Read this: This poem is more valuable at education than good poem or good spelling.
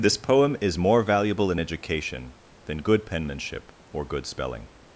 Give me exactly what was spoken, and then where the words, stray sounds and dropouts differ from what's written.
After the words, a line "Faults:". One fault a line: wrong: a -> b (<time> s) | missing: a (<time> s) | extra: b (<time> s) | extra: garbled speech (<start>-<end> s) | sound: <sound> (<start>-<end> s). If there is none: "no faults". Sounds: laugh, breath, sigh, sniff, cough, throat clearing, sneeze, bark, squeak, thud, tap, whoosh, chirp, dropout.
This poem is more valuable in education than good penmanship or good spelling.
Faults:
wrong: at -> in (1.5 s)
wrong: poem -> penmanship (3.0 s)